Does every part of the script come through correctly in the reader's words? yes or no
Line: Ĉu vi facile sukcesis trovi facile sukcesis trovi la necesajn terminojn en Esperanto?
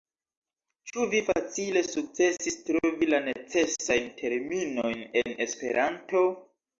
no